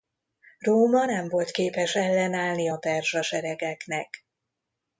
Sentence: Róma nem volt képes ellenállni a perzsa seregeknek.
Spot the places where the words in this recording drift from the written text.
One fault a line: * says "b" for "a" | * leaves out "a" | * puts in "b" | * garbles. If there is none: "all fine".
all fine